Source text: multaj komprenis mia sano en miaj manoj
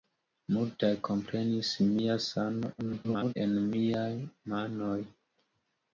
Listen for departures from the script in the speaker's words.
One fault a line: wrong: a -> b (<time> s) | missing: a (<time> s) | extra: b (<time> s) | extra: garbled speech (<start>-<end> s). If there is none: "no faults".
extra: garbled speech (2.8-3.3 s)